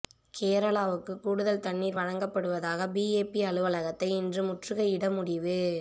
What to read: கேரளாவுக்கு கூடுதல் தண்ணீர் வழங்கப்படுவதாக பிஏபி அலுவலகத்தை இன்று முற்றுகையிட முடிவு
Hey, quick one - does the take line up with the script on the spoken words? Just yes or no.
yes